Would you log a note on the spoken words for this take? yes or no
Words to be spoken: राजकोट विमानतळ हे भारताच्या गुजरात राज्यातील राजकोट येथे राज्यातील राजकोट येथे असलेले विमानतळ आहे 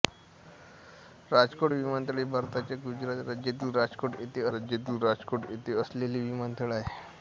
no